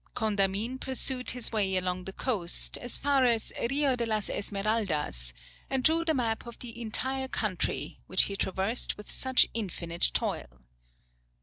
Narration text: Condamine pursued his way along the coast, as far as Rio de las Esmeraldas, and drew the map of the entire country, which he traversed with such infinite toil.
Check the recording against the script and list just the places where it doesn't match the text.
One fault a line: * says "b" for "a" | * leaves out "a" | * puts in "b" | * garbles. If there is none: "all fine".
all fine